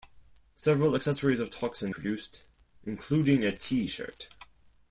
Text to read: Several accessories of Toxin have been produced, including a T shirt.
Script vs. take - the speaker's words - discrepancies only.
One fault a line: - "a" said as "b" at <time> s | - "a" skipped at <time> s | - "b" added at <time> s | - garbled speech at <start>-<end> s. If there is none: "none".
- "have been" skipped at 1.9 s